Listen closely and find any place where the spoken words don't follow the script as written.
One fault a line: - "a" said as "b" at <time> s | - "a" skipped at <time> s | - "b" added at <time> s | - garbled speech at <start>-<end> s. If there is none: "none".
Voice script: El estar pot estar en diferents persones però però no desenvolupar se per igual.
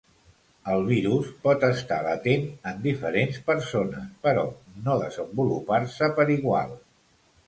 - "estar" said as "virus" at 0.8 s
- "latent" added at 2.1 s
- "però" skipped at 4.4 s